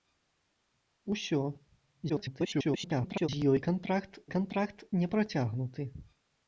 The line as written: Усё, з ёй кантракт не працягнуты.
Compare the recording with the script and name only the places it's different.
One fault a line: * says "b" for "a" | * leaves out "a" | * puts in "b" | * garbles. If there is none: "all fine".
* garbles
* puts in "кантракт"